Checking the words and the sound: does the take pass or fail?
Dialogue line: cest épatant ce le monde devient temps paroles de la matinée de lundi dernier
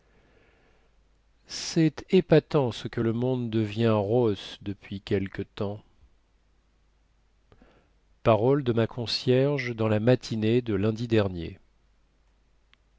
fail